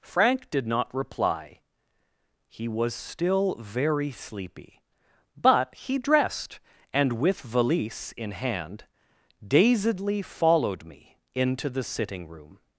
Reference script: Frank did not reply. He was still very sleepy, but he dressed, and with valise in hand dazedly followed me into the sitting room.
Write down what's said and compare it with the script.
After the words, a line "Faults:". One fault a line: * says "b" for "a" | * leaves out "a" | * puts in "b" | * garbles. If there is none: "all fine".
Frank did not reply. He was still very sleepy, but he dressed, and with valise in hand dazedly followed me into the sitting room.
Faults:
all fine